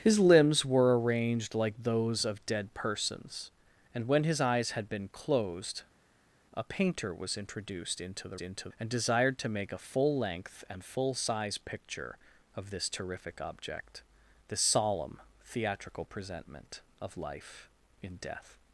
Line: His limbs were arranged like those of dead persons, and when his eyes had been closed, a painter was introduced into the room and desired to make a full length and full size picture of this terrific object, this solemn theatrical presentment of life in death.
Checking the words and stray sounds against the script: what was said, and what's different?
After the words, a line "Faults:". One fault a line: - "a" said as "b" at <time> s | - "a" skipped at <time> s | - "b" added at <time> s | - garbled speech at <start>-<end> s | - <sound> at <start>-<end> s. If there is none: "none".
His limbs were arranged like those of dead persons, and when his eyes had been closed, a painter was introduced into the into and desired to make a full length and full size picture of this terrific object, this solemn theatrical presentment of life in death.
Faults:
- "room" said as "into" at 8.4 s